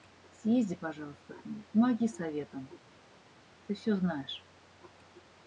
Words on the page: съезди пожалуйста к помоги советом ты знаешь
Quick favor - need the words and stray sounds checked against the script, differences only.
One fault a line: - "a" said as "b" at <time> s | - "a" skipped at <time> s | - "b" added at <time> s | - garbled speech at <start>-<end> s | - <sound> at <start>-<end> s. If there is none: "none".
- "ней" added at 1.4 s
- "всё" added at 3.7 s